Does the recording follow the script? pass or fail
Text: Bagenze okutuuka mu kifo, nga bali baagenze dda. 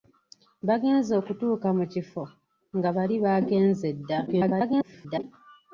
fail